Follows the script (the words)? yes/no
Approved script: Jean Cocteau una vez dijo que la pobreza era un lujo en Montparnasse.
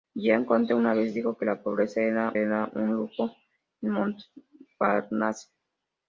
no